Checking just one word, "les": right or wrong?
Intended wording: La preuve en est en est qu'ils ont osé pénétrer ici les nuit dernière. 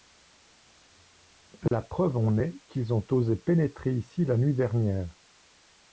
wrong